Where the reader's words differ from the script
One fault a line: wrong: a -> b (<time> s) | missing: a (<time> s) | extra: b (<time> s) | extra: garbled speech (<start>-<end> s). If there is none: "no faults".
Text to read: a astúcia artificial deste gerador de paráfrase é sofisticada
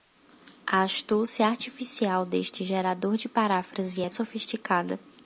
no faults